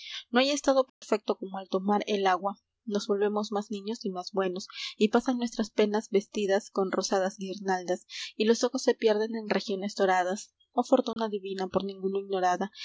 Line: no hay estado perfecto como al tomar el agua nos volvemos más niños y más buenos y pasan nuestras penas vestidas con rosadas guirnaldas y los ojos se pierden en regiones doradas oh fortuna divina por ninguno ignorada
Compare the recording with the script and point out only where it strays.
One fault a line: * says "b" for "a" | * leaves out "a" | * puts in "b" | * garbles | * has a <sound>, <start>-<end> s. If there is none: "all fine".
* has a dropout, 0.9-1.0 s
* has a dropout, 11.1-11.2 s